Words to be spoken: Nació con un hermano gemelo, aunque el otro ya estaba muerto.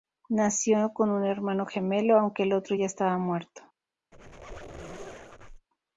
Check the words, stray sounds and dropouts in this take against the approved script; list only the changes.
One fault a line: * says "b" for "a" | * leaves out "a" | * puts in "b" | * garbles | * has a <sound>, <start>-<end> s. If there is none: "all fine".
* has a squeak, 4.1-5.7 s